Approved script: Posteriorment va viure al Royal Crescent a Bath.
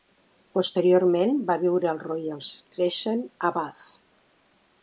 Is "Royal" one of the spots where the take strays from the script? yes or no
no